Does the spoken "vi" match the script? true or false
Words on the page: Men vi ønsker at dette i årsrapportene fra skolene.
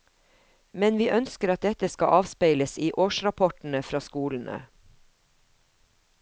true